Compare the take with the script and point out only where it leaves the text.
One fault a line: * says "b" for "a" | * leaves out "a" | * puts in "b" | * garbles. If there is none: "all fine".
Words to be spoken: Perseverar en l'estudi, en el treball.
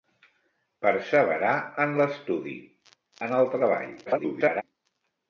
* garbles